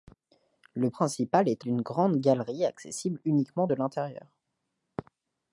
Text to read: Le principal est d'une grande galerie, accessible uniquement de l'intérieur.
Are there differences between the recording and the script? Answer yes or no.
no